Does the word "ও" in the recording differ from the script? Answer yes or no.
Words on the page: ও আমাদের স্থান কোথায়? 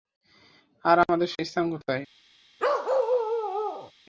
yes